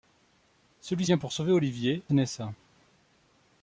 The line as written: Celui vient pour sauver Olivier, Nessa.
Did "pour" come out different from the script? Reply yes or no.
no